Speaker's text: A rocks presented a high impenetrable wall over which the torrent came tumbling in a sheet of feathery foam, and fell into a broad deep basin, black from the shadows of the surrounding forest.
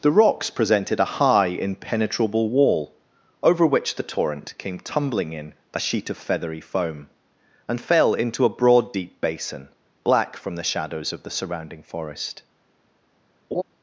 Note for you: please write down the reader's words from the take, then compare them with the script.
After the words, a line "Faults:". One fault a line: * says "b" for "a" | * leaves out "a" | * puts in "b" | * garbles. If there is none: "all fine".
The rocks presented a high impenetrable wall over which the torrent came tumbling in a sheet of feathery foam, and fell into a broad deep basin, black from the shadows of the surrounding forest.
Faults:
* says "The" for "A"